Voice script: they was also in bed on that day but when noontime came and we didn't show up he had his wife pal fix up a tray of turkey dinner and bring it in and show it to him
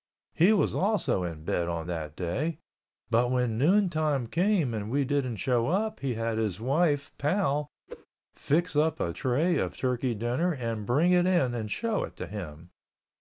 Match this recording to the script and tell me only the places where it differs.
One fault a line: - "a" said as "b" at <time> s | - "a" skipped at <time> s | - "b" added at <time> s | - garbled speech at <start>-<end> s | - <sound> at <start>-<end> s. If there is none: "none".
- "they" said as "he" at 0.3 s
- whoosh at 7.9-8.1 s